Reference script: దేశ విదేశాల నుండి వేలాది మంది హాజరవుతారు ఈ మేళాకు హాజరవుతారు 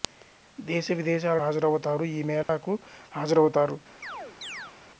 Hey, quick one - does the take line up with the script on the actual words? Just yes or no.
no